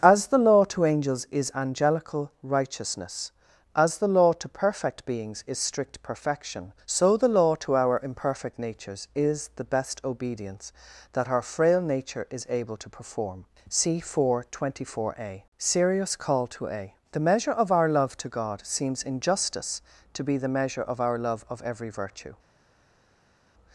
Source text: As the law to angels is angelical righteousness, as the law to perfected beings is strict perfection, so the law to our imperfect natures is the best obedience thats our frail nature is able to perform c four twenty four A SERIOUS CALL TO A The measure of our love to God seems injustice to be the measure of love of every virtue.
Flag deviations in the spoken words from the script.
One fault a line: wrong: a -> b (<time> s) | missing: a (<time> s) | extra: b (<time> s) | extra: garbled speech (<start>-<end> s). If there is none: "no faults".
wrong: perfected -> perfect (4.5 s)
wrong: thats -> that (11.1 s)
extra: our (21.0 s)